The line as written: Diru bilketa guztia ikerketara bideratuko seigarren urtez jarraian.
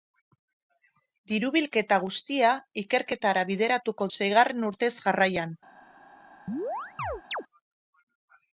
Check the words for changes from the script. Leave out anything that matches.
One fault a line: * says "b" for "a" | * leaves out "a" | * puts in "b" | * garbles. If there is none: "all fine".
all fine